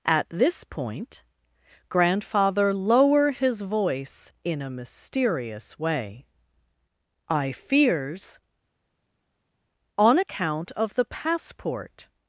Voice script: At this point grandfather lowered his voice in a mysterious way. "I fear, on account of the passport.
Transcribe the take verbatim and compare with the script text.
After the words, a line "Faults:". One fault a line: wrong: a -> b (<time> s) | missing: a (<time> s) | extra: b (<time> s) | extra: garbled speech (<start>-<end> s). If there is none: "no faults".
At this point grandfather lower his voice in a mysterious way. "I fears, on account of the passport.
Faults:
wrong: lowered -> lower (2.7 s)
wrong: fear -> fears (7.5 s)